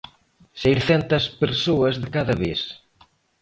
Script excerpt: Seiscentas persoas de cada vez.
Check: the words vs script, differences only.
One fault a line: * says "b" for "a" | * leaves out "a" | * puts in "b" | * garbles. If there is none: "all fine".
all fine